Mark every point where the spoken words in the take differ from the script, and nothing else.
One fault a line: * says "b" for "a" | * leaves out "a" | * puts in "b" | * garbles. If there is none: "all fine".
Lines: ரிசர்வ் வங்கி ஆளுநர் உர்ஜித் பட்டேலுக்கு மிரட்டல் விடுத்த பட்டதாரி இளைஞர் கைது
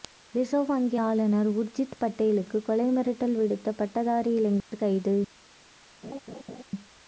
* puts in "கொலை"